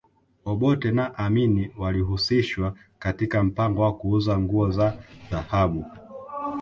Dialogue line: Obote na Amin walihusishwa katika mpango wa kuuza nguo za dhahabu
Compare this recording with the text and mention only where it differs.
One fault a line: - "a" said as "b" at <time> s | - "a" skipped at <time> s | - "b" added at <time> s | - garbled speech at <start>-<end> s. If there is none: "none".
none